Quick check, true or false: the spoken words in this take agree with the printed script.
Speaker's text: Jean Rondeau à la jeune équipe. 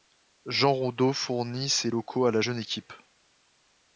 false